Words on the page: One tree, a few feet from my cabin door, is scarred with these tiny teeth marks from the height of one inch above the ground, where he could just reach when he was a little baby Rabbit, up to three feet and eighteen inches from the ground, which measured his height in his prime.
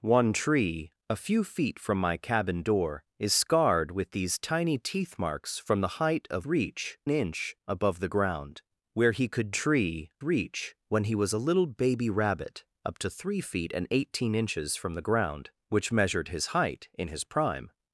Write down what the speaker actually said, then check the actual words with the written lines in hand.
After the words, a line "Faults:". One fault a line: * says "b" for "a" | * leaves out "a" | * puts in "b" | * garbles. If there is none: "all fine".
One tree, a few feet from my cabin door, is scarred with these tiny teeth marks from the height of reach inch above the ground, where he could tree reach when he was a little baby Rabbit, up to three feet and eighteen inches from the ground, which measured his height in his prime.
Faults:
* says "reach" for "one"
* says "tree" for "just"